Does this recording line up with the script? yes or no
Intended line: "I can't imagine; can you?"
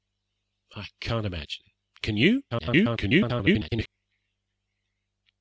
no